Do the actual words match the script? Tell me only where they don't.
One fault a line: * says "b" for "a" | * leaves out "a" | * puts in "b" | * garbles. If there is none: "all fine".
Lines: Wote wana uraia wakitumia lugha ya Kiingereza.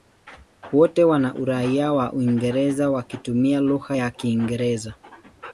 * puts in "wa Uingereza"